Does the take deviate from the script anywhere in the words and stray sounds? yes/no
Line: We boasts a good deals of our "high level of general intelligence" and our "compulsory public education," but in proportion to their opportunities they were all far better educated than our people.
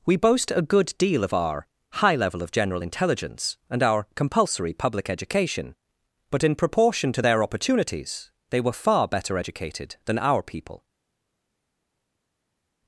yes